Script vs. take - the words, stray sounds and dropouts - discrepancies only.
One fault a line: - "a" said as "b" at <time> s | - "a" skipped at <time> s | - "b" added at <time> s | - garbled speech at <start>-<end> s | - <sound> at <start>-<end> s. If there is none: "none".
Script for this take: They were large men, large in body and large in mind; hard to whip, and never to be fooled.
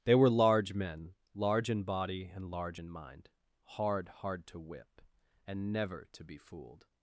- "hard" added at 4.1 s